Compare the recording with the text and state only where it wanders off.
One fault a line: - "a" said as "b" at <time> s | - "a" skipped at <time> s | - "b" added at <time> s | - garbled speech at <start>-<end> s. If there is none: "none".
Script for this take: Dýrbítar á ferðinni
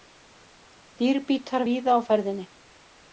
- "víða" added at 1.7 s